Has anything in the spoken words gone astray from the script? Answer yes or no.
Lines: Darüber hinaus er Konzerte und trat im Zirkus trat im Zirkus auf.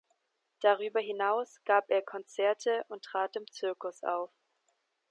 yes